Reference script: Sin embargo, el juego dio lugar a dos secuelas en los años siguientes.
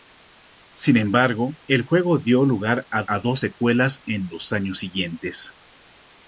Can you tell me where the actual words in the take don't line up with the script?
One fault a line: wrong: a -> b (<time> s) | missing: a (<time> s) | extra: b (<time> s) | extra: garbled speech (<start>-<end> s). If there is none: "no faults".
extra: a (3.0 s)